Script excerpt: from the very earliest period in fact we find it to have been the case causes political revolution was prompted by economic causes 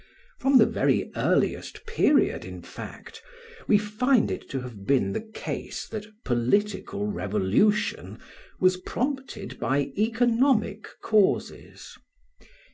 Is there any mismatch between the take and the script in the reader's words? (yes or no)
yes